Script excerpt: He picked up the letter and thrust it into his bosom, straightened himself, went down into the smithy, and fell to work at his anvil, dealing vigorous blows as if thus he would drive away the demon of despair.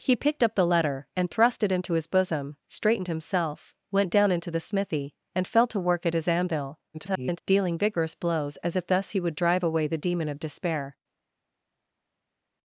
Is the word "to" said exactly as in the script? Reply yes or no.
yes